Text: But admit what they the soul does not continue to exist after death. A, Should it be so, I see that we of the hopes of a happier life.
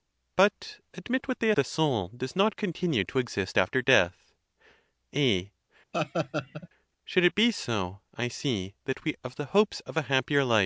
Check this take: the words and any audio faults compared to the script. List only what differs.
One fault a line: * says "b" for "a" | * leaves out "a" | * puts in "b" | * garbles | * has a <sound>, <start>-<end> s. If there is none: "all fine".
* has a laugh, 5.9-6.7 s